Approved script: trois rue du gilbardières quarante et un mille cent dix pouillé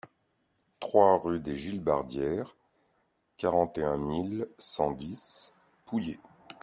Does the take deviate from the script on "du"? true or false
true